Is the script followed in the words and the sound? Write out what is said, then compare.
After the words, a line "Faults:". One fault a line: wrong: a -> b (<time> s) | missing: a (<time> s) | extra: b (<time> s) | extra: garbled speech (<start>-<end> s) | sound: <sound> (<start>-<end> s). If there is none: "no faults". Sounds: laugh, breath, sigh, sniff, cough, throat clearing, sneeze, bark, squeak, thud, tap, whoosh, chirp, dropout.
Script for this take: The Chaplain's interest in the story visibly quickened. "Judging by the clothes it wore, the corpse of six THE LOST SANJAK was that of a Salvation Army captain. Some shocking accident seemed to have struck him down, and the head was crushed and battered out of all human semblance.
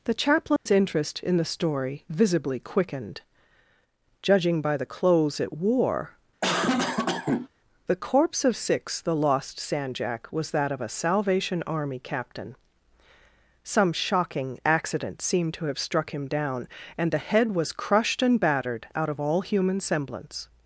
The Chaplain's interest in the story visibly quickened. "Judging by the clothes it wore, the corpse of six THE LOST SANJAK was that of a Salvation Army captain. Some shocking accident seemed to have struck him down, and the head was crushed and battered out of all human semblance.
Faults:
sound: dropout (0.6-0.7 s)
sound: cough (6.4-7.5 s)